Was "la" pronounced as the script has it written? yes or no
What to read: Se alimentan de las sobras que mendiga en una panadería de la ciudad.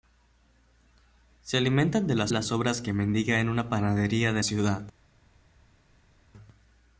no